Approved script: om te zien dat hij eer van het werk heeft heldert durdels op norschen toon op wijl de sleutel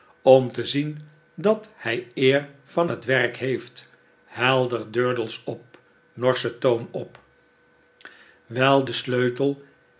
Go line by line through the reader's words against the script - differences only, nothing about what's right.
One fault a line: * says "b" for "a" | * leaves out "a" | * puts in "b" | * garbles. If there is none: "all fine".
all fine